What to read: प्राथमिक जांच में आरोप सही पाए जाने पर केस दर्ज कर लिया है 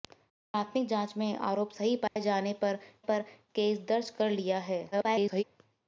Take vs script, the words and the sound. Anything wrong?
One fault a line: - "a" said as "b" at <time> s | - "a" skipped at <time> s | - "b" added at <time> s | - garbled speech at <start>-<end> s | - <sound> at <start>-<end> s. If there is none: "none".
- dropout at 2.1-2.2 s
- "पर" added at 3.0 s
- garbled speech at 4.9-5.4 s